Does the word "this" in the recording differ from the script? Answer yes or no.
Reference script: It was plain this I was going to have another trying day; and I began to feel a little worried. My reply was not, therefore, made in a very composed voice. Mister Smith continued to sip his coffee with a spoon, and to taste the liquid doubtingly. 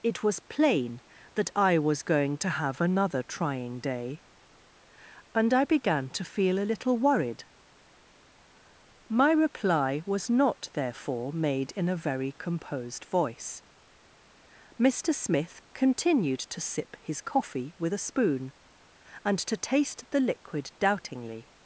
yes